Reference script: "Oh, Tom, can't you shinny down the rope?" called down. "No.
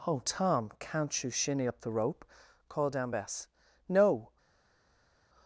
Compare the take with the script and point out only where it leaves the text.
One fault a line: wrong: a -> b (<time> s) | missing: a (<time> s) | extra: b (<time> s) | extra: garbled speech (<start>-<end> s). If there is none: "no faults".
wrong: down -> up (1.7 s)
extra: Bess (3.1 s)